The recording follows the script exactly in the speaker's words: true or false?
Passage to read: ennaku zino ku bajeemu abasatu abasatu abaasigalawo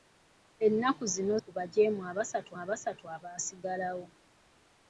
true